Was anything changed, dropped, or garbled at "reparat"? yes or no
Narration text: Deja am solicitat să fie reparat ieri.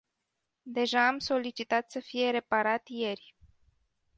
no